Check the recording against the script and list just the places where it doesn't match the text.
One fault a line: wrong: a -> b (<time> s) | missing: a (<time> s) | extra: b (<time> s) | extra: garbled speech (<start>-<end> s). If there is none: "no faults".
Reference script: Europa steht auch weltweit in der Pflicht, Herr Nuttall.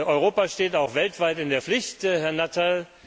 no faults